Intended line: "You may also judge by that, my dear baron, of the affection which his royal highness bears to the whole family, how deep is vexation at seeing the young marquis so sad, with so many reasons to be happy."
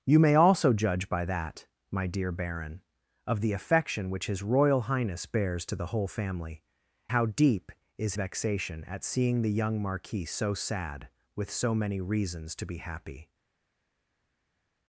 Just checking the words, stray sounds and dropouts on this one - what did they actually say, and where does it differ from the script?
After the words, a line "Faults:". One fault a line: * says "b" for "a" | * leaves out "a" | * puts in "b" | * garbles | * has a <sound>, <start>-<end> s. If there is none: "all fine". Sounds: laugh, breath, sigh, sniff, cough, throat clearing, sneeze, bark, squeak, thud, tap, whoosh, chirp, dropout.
"You may also judge by that, my dear baron, of the affection which his royal highness bears to the whole family, how deep is vexation at seeing the young marquis so sad, with so many reasons to be happy."
Faults:
all fine